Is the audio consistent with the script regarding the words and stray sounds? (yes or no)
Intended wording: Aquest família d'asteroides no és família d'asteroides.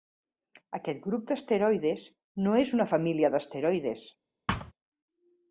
no